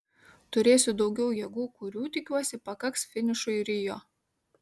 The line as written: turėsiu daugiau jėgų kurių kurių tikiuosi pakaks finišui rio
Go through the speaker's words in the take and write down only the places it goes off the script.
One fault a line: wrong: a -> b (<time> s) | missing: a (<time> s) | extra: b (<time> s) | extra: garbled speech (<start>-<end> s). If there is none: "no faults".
missing: kurių (2.0 s)